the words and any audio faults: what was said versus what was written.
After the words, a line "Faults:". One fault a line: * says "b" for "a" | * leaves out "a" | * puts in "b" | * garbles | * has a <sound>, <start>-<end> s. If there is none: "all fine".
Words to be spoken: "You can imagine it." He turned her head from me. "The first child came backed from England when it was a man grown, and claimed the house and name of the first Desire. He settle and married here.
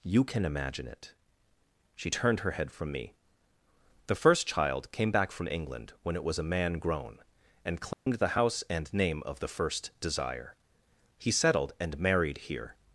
"You can imagine it." She turned her head from me. "The first child came back from England when it was a man grown, and claimed the house and name of the first Desire. He settled and married here.
Faults:
* says "She" for "He"
* says "back" for "backed"
* has a dropout, 7.9-8.1 s
* says "settled" for "settle"